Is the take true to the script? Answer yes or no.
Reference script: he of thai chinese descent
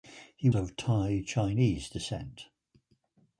yes